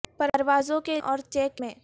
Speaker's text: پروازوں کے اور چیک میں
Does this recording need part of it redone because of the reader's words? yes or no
no